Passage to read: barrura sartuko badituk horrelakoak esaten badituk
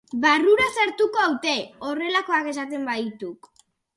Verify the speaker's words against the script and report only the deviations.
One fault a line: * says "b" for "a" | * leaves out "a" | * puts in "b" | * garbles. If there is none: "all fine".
* says "haute" for "badituk"